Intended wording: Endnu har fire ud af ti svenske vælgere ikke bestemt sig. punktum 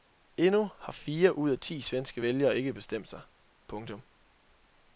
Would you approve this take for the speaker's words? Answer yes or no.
yes